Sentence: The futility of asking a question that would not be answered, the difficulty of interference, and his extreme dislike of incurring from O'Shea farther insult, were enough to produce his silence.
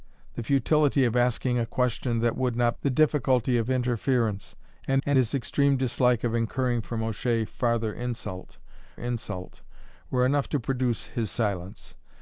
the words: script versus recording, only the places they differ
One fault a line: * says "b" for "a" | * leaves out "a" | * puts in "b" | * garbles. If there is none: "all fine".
* leaves out "be answered"
* puts in "and"
* puts in "insult"